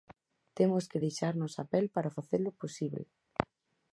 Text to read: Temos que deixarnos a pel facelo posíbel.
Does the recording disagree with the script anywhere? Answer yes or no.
yes